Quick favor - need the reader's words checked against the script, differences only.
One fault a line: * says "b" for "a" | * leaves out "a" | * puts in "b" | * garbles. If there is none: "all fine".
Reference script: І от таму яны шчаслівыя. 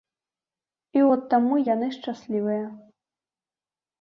all fine